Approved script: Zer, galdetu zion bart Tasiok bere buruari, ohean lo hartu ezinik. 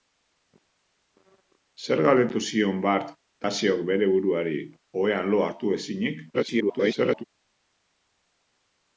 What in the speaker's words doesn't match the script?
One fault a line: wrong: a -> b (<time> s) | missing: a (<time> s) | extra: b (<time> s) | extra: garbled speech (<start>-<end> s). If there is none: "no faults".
extra: garbled speech (6.3-7.2 s)